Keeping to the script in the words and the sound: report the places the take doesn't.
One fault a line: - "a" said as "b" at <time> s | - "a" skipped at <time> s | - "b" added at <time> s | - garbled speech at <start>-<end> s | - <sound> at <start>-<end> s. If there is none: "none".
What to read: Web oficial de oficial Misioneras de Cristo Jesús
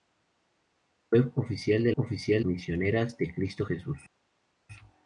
none